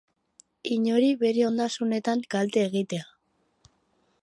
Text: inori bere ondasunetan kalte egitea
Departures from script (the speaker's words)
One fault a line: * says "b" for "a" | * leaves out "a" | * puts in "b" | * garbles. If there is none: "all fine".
all fine